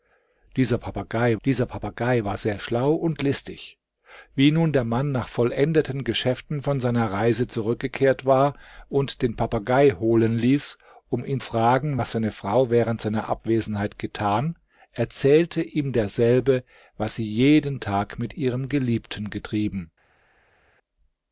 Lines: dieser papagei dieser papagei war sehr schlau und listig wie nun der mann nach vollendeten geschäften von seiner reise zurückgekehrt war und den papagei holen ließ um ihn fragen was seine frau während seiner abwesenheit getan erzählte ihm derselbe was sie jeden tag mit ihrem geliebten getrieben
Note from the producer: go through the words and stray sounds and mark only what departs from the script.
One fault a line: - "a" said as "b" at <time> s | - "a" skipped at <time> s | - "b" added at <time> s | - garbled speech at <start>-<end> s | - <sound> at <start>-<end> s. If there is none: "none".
none